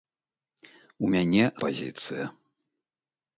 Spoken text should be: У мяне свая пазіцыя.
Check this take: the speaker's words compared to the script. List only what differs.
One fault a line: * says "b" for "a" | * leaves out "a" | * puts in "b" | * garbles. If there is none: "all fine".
* leaves out "свая"